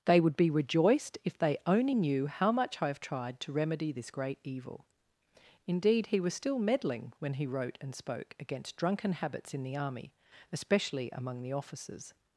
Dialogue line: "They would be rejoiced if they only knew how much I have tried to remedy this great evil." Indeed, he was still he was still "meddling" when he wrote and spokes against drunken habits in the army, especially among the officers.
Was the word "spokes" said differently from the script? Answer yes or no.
yes